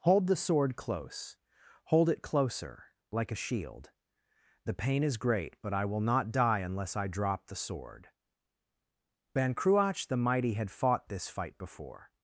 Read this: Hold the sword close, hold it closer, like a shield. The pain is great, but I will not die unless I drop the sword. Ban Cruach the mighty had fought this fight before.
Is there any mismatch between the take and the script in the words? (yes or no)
no